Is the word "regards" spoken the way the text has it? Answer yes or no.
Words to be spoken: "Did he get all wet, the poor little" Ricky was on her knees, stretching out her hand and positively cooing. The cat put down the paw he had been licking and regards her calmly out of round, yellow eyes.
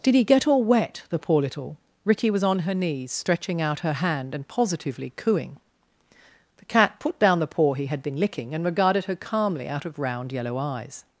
no